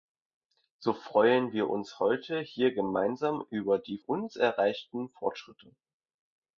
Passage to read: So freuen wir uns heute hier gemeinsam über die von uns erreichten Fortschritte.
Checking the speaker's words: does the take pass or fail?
fail